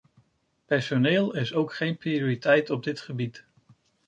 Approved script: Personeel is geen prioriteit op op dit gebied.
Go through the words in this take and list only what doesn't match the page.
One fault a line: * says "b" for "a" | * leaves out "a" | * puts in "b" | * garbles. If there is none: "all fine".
* puts in "ook"
* leaves out "op"